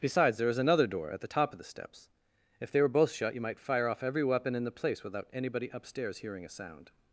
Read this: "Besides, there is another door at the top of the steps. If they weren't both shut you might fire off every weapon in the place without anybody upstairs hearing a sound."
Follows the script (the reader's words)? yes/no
no